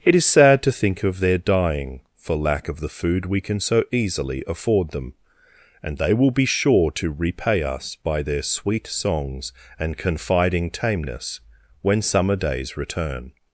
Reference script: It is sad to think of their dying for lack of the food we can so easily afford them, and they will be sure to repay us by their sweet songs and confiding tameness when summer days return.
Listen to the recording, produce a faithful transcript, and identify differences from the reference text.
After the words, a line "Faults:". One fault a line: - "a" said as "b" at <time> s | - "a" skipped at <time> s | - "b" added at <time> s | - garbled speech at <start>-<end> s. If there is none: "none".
It is sad to think of their dying for lack of the food we can so easily afford them, and they will be sure to repay us by their sweet songs and confiding tameness when summer days return.
Faults:
none